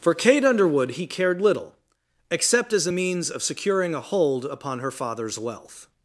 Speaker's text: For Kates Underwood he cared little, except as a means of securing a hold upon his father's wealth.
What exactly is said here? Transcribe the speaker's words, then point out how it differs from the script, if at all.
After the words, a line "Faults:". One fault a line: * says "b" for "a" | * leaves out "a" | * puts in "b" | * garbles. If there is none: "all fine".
For Kate Underwood he cared little, except as a means of securing a hold upon her father's wealth.
Faults:
* says "Kate" for "Kates"
* says "her" for "his"